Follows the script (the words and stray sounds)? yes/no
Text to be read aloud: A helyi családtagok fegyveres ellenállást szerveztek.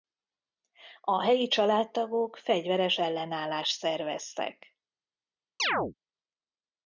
no